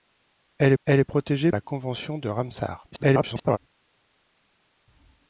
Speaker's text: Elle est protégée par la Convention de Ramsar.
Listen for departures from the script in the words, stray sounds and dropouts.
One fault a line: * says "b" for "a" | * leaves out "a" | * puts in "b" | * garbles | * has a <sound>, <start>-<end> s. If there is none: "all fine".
* puts in "elle"
* leaves out "par"
* garbles